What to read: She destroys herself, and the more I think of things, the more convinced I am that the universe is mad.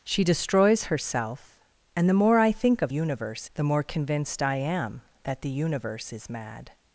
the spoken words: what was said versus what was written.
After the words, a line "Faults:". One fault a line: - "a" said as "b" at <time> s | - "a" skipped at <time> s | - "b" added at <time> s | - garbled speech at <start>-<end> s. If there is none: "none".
She destroys herself, and the more I think of universe, the more convinced I am that the universe is mad.
Faults:
- "things" said as "universe" at 2.9 s